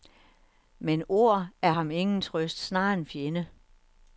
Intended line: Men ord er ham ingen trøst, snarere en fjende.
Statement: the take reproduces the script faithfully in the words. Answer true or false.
true